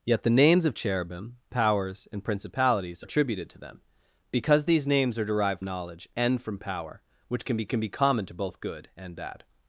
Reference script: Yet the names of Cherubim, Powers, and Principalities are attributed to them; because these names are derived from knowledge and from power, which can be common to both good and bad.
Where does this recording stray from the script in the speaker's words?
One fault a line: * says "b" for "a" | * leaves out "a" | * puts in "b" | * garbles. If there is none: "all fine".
* leaves out "are"
* leaves out "from"
* puts in "can be"